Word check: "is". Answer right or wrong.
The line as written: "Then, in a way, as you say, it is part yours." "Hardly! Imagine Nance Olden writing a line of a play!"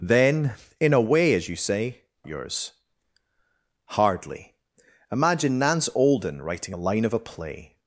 wrong